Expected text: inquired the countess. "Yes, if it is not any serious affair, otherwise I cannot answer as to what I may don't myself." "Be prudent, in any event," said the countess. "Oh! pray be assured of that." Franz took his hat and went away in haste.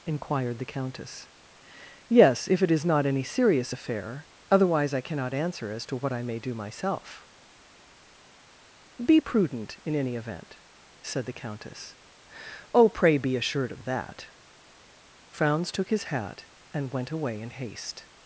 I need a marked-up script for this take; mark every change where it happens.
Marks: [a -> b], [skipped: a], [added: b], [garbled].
inquired the countess. "Yes, if it is not any serious affair, otherwise I cannot answer as to what I may [don't -> do] myself." "Be prudent, in any event," said the countess. "Oh! pray be assured of that." Franz took his hat and went away in haste.